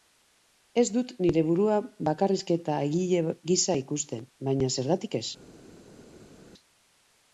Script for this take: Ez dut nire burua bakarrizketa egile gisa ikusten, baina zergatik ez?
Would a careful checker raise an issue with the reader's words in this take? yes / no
no